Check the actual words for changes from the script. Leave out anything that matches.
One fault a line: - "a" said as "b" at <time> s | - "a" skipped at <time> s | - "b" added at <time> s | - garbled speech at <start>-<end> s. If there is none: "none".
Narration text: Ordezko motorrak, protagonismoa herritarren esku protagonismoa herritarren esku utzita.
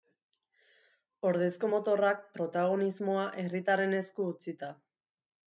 - "protagonismoa herritarren esku" skipped at 4.3 s